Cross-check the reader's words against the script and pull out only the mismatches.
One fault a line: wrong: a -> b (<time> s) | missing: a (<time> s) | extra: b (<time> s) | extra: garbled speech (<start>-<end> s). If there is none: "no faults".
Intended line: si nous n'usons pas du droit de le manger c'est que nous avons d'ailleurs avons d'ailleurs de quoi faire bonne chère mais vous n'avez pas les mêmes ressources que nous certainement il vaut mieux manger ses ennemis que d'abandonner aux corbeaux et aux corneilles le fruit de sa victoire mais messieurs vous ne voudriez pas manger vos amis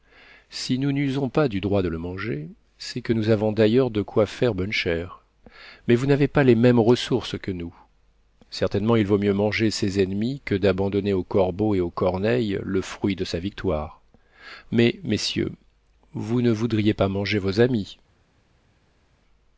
missing: avons d'ailleurs (3.9 s)